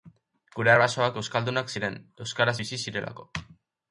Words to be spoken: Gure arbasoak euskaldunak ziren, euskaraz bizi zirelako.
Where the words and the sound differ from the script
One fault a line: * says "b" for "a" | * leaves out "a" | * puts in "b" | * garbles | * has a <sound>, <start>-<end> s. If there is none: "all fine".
all fine